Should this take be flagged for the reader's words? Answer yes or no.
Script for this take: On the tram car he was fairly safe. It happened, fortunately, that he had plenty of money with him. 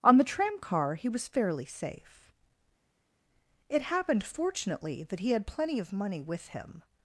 no